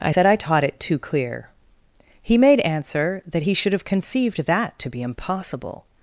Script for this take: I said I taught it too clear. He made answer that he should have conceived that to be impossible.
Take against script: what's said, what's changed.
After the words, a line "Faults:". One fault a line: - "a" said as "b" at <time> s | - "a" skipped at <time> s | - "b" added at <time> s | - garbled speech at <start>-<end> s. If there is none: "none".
I said I taught it too clear. He made answer that he should have conceived that to be impossible.
Faults:
none